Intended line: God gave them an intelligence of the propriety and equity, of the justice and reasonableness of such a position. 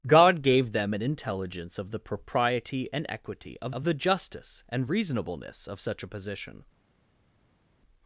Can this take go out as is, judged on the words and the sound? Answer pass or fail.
fail